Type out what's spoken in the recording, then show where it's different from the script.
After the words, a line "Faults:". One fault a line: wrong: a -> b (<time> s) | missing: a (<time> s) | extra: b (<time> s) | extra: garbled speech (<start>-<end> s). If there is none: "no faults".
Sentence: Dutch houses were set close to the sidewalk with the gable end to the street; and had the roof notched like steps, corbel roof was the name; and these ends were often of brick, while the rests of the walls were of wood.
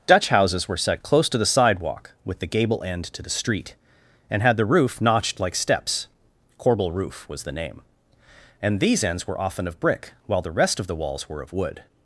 Dutch houses were set close to the sidewalk with the gable end to the street; and had the roof notched like steps, corbel roof was the name; and these ends were often of brick, while the rest of the walls were of wood.
Faults:
wrong: rests -> rest (10.5 s)